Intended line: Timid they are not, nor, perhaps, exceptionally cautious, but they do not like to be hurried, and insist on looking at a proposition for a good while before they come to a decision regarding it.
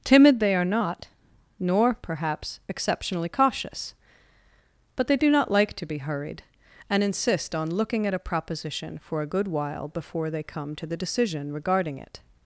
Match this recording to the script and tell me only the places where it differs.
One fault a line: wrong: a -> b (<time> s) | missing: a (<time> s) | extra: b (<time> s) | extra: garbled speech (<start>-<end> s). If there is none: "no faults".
wrong: a -> the (10.8 s)